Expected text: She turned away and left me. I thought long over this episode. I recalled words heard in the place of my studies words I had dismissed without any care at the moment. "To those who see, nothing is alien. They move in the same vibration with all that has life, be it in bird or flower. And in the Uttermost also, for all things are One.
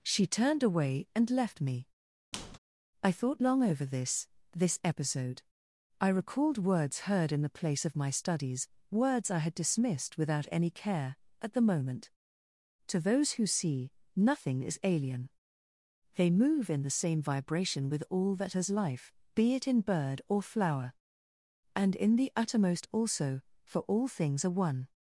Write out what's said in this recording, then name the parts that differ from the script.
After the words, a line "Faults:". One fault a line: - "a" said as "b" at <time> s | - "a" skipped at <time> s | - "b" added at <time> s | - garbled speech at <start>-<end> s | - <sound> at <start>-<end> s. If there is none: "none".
She turned away and left me. I thought long over this this episode. I recalled words heard in the place of my studies words I had dismissed without any care at the moment. "To those who see, nothing is alien. They move in the same vibration with all that has life, be it in bird or flower. And in the Uttermost also, for all things are One.
Faults:
- squeak at 2.3-2.6 s
- "this" added at 4.5 s